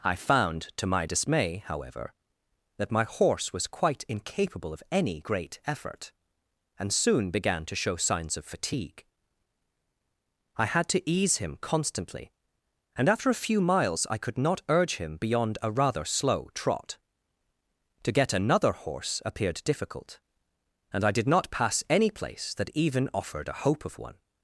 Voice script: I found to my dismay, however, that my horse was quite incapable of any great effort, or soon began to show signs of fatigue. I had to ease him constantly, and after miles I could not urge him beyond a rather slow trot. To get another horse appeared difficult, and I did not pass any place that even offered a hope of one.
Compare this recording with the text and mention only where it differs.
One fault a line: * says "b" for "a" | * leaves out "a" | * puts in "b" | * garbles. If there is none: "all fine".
* says "and" for "or"
* puts in "a few"